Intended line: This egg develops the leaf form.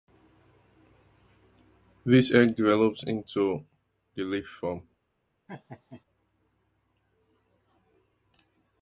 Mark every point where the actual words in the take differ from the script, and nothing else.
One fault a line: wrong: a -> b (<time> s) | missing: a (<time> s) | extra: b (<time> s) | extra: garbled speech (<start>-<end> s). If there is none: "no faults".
extra: into (3.0 s)